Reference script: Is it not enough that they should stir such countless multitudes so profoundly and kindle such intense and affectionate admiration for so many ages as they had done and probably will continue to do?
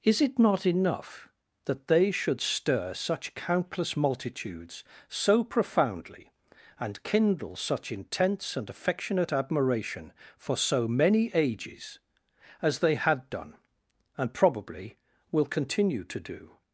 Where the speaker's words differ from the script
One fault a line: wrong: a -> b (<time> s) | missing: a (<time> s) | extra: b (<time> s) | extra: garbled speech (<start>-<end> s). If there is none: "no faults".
no faults